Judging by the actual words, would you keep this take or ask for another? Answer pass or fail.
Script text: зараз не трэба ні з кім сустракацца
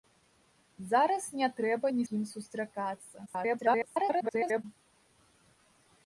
fail